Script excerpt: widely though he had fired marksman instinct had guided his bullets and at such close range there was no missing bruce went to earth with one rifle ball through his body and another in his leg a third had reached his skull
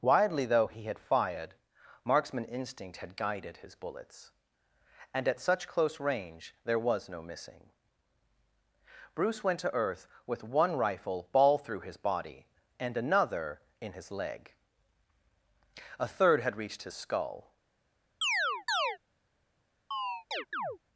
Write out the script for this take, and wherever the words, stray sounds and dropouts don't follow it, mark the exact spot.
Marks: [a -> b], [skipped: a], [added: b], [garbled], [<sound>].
widely though he had fired marksman instinct had guided his bullets and at such close range there was no missing bruce went to earth with one rifle ball through his body and another in his leg a third had reached his skull [chirp] [chirp]